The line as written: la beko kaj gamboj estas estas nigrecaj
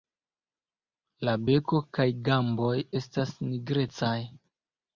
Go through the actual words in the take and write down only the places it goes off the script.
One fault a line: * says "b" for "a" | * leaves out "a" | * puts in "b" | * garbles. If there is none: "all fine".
* leaves out "estas"